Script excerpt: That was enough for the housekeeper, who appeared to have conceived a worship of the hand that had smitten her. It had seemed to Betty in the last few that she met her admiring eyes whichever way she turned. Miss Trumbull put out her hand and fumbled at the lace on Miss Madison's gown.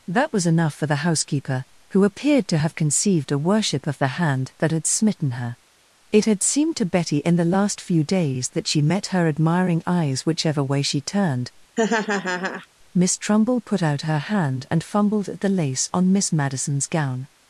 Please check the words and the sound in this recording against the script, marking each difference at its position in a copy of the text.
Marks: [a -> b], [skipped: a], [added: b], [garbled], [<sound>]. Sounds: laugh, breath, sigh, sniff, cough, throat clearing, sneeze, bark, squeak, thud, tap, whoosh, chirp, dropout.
That was enough for the housekeeper, who appeared to have conceived a worship of the hand that had smitten her. It had seemed to Betty in the last few [added: days] that she met her admiring eyes whichever way she turned. [laugh] Miss Trumbull put out her hand and fumbled at the lace on Miss Madison's gown.